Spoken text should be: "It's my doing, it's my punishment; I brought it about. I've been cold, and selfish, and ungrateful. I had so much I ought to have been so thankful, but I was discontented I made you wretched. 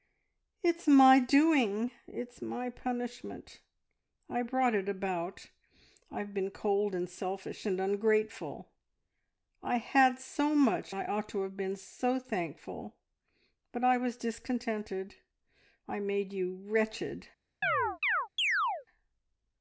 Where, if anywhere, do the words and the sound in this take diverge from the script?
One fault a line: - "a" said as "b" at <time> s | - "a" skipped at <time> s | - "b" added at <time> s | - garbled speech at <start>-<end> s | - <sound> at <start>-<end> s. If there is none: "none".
- chirp at 17.6-18.9 s